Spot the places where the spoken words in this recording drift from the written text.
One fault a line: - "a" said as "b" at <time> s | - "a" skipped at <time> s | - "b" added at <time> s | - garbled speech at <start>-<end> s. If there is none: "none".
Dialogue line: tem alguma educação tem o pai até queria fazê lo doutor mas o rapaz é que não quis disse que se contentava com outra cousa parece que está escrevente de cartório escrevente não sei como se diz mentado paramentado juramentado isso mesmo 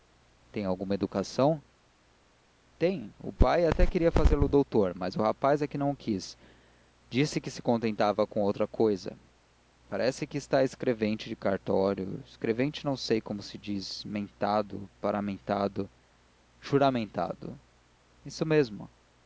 none